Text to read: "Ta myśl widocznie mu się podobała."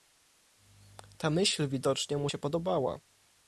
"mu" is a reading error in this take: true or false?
false